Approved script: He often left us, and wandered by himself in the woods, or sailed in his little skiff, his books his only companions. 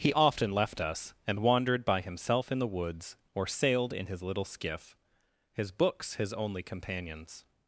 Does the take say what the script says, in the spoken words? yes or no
yes